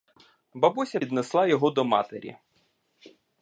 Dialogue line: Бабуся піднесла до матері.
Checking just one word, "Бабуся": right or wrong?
right